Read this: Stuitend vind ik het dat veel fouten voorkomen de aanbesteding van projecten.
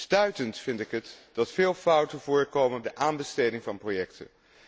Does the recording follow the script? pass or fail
pass